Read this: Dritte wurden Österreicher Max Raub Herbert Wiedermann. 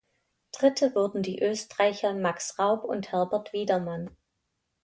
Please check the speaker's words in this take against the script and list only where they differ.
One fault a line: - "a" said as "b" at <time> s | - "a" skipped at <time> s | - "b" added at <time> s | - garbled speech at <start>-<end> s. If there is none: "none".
- "die" added at 1.2 s
- "und" added at 2.9 s